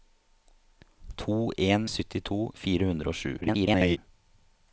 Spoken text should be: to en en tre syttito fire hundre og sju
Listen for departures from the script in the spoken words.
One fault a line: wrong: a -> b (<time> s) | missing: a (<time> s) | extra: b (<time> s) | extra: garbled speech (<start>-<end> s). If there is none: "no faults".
missing: en tre (1.9 s)
extra: garbled speech (3.4-4.0 s)